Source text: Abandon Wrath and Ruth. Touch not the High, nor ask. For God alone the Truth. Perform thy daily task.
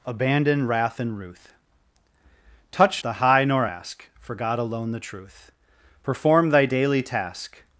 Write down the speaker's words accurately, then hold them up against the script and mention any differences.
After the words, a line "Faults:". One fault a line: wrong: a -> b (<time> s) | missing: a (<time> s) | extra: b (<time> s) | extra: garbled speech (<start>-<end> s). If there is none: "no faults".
Abandon Wrath and Ruth. Touch the High, nor ask. For God alone the Truth. Perform thy daily task.
Faults:
missing: not (3.0 s)